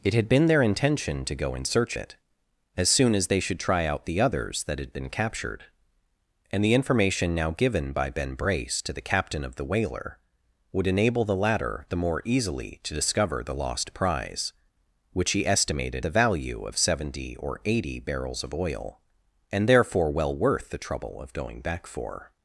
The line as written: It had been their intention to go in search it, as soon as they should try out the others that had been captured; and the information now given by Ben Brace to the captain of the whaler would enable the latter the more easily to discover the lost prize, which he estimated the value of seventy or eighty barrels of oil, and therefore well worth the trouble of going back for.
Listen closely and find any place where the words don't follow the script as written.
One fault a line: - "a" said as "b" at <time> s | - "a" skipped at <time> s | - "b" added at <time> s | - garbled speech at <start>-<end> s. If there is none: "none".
none